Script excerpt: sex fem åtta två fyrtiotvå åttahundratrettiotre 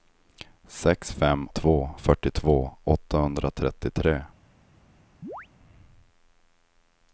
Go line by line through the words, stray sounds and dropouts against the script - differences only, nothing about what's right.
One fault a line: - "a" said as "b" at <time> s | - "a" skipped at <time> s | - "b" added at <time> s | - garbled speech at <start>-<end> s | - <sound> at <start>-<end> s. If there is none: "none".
- "åtta" skipped at 1.5 s
- chirp at 5.2-5.5 s